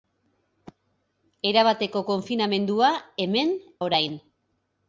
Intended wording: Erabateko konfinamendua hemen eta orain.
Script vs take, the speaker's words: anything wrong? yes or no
yes